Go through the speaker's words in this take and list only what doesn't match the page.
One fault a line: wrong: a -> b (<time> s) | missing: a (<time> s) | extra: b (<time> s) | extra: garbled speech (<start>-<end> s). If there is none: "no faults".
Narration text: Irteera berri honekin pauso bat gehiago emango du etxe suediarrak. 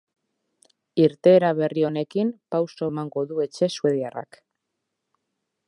missing: bat gehiago (2.9 s)